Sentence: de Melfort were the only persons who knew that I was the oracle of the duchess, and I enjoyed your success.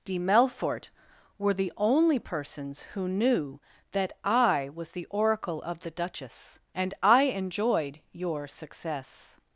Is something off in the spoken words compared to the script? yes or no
no